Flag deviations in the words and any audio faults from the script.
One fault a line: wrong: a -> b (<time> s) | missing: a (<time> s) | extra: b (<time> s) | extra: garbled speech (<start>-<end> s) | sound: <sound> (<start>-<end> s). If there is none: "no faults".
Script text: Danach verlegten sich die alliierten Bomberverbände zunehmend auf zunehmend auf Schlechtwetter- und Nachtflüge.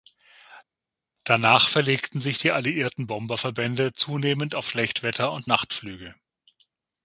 missing: zunehmend auf (4.7 s)